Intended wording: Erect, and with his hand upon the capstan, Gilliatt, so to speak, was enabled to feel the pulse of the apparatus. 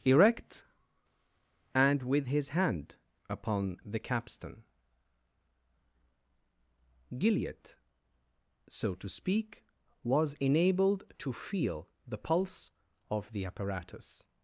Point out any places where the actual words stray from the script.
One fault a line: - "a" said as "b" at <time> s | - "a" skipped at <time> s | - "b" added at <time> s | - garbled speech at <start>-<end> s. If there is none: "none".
none